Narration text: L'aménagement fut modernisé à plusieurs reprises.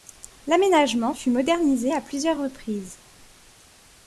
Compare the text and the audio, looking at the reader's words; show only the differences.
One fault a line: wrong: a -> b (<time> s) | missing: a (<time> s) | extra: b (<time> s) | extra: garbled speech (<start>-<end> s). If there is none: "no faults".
no faults